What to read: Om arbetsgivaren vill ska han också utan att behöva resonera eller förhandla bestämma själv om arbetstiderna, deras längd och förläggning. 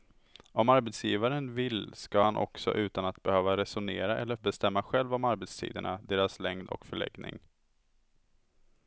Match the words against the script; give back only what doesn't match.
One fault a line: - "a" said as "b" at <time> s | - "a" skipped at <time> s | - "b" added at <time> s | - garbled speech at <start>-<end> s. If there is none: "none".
- "förhandla" skipped at 4.3 s